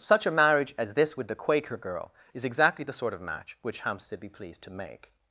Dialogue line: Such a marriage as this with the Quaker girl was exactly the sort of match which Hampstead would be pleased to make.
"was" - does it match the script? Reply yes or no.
no